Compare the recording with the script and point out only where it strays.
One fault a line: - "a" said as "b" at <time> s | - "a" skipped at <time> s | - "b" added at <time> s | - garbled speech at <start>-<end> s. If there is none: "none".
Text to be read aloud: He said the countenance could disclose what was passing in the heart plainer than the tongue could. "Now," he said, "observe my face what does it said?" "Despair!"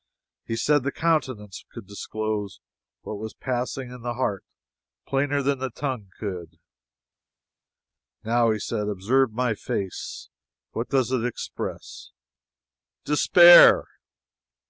- "said" said as "express" at 11.3 s